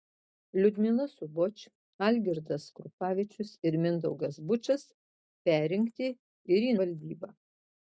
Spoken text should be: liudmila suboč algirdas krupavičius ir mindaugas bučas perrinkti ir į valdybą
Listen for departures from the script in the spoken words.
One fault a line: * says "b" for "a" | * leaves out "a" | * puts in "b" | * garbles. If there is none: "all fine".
all fine